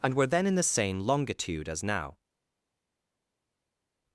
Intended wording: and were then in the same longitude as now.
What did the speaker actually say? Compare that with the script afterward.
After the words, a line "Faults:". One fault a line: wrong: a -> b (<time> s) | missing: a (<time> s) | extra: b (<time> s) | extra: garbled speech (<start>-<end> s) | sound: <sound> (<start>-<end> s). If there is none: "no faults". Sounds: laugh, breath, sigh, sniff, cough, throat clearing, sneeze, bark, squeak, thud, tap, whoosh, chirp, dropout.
and were then in the same longitude as now.
Faults:
no faults